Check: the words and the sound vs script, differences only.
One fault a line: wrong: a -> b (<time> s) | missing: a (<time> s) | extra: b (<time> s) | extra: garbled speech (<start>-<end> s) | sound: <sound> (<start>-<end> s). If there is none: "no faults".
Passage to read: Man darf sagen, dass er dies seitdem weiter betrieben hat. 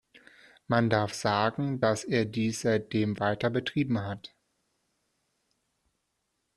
no faults